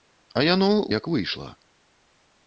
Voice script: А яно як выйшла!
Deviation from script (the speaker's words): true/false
false